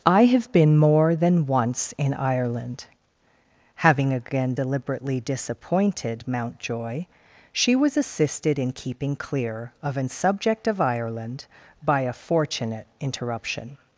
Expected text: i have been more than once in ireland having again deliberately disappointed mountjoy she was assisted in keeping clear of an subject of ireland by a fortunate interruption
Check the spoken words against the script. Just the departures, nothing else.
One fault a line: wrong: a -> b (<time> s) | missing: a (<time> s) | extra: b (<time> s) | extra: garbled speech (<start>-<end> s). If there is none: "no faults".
no faults